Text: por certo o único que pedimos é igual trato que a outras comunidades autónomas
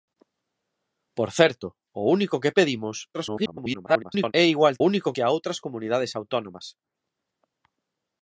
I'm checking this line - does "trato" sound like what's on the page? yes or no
no